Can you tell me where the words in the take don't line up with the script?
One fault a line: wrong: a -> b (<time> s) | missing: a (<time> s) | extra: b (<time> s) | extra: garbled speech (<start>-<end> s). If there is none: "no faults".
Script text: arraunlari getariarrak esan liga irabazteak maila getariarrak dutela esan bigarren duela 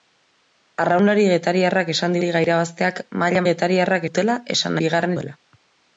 no faults